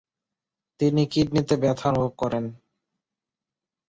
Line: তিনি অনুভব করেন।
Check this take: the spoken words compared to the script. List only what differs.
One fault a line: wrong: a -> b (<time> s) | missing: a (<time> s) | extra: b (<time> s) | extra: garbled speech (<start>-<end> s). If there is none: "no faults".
extra: কিডনিতে ব্যথা (1.1 s)